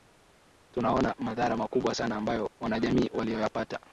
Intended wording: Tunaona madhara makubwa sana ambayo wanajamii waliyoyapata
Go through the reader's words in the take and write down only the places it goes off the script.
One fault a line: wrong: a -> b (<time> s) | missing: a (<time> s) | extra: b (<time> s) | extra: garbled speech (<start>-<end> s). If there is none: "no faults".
no faults